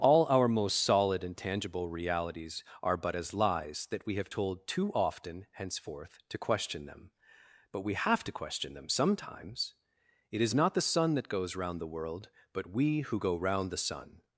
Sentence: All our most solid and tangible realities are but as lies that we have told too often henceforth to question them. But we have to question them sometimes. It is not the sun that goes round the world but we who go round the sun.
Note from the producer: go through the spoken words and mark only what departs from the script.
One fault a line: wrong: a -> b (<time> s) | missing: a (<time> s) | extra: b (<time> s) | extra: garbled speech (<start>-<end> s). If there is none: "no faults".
no faults